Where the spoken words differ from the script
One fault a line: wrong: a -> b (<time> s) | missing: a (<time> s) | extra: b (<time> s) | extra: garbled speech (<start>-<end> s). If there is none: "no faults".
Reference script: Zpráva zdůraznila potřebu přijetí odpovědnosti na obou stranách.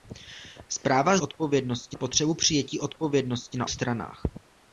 wrong: zdůraznila -> odpovědnosti (1.2 s)
missing: obou (3.7 s)